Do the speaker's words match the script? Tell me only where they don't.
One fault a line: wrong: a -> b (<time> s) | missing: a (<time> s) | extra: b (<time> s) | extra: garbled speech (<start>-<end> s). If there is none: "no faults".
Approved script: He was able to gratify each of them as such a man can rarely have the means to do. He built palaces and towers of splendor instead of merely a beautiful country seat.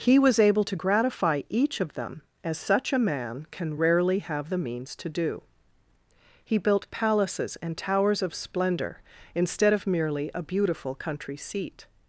no faults